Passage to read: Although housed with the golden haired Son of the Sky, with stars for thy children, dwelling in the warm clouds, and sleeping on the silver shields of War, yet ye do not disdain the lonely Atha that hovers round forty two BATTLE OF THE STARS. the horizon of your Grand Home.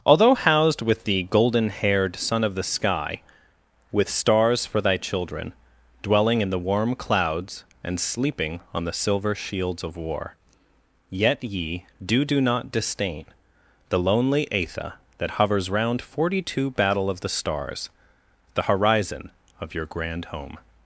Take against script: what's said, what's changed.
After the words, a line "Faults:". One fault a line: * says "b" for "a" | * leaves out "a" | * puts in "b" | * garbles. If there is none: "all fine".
Although housed with the golden haired Son of the Sky, with stars for thy children, dwelling in the warm clouds, and sleeping on the silver shields of War, yet ye do do not disdain the lonely Atha that hovers round forty two BATTLE OF THE STARS. the horizon of your Grand Home.
Faults:
* puts in "do"